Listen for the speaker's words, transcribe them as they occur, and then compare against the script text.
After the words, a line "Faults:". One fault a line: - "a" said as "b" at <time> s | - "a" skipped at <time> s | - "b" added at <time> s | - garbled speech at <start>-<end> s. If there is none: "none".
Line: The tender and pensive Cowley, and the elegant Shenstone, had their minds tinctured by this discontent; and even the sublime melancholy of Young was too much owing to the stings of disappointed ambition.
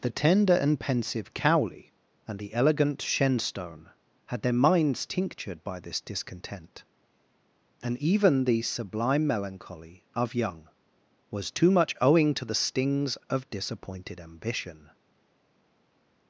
The tender and pensive Cowley, and the elegant Shenstone, had their minds tinctured by this discontent; and even the sublime melancholy of Young was too much owing to the stings of disappointed ambition.
Faults:
none